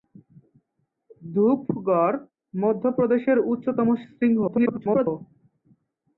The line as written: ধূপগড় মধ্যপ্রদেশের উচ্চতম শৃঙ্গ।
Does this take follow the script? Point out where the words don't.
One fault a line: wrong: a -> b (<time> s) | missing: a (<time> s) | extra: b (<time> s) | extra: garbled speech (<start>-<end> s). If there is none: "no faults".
extra: garbled speech (4.5-5.1 s)